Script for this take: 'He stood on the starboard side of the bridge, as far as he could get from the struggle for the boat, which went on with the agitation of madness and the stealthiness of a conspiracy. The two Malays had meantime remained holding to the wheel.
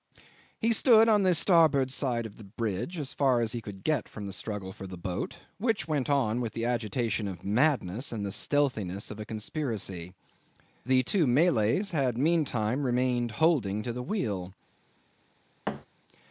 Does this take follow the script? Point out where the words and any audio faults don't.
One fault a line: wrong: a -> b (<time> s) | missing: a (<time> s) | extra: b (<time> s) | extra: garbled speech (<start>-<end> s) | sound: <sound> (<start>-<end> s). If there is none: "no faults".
sound: thud (15.7-15.9 s)